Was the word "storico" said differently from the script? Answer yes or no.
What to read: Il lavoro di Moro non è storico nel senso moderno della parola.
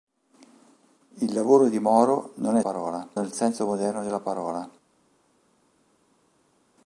yes